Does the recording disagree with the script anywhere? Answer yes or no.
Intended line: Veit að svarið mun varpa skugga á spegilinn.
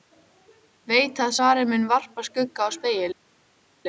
no